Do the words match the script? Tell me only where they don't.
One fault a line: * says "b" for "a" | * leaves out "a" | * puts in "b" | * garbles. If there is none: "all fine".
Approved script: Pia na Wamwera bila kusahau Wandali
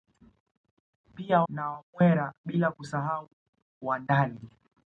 all fine